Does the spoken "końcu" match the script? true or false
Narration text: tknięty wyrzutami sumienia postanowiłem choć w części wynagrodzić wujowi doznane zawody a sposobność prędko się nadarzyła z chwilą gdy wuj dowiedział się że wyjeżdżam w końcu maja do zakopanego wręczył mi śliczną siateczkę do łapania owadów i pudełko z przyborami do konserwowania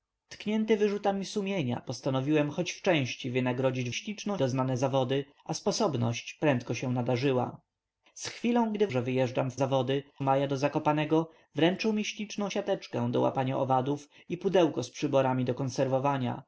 false